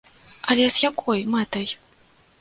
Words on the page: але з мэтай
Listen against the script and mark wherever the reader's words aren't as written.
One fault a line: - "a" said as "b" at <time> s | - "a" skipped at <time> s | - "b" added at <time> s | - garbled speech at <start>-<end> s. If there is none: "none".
- "якой" added at 0.9 s